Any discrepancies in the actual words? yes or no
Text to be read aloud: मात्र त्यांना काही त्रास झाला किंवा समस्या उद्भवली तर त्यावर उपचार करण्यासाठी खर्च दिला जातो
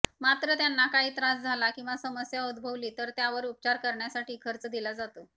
no